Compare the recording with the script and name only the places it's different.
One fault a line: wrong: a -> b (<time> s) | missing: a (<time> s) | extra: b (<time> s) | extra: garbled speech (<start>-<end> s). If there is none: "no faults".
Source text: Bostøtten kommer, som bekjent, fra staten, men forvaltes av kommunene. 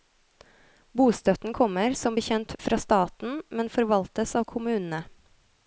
no faults